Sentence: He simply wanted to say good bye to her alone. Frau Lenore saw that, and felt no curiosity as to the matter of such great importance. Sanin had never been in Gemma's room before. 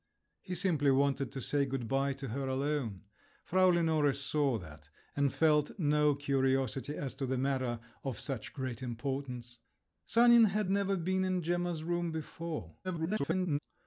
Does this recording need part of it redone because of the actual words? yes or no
yes